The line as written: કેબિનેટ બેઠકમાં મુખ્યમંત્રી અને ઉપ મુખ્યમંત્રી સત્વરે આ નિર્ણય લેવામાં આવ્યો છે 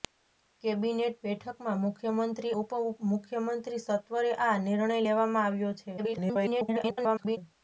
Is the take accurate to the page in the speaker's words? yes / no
no